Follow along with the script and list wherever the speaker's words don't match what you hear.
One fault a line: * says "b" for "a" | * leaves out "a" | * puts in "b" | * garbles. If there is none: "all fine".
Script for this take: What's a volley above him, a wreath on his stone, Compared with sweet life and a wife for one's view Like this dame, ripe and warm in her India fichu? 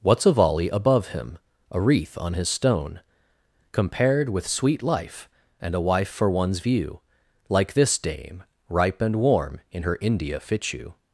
all fine